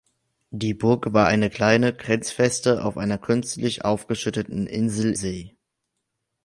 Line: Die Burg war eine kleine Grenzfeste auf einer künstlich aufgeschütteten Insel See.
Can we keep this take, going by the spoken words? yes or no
yes